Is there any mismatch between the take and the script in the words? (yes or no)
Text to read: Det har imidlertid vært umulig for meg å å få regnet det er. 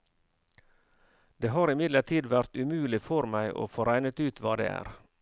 yes